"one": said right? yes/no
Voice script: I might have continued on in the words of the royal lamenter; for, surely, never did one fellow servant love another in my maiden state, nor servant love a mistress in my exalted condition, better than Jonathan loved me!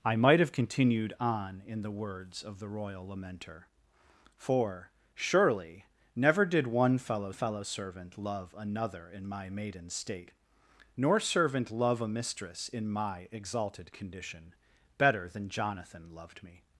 yes